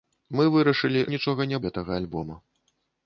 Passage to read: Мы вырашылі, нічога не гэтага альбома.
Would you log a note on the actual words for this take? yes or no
no